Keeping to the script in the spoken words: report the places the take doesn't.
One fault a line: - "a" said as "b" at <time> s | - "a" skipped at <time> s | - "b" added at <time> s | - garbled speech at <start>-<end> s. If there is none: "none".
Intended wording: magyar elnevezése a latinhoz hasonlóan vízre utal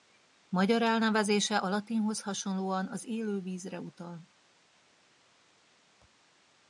- "az élő" added at 2.9 s